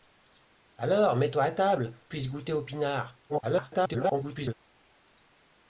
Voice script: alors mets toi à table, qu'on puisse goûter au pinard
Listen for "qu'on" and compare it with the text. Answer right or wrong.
wrong